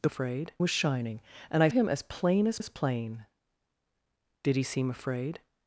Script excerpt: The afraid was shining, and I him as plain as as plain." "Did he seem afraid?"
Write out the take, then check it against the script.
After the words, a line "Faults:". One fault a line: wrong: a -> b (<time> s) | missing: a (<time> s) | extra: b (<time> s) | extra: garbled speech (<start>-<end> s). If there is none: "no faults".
The afraid was shining, and I him as plain as as plain." "Did he seem afraid?"
Faults:
no faults